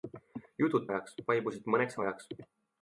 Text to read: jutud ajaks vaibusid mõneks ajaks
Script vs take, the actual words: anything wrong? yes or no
no